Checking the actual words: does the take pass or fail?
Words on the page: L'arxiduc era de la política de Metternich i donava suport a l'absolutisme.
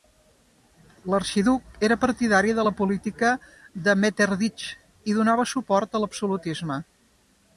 fail